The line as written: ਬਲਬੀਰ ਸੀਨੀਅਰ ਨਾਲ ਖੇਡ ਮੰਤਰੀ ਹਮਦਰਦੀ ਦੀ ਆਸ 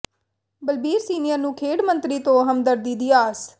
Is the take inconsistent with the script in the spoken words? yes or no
yes